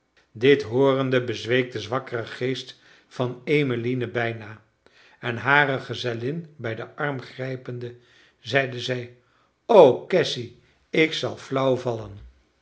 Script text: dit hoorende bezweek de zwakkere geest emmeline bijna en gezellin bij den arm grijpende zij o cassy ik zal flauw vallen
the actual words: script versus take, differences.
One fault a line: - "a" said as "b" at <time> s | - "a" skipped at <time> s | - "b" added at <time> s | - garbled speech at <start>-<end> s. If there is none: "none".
- "van" added at 3.1 s
- "hare" added at 5.4 s
- "zeide" added at 8.4 s